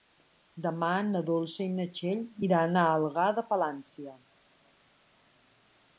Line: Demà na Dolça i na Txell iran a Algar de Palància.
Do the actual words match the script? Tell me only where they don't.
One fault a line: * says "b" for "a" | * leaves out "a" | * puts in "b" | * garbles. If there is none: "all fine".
all fine